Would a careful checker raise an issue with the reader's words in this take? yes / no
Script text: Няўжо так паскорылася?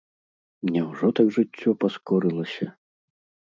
yes